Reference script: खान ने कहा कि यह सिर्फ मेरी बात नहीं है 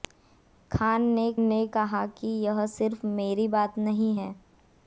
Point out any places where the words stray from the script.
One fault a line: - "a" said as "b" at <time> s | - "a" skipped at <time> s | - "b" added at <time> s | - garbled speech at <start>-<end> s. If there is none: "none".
- "ने" added at 1.4 s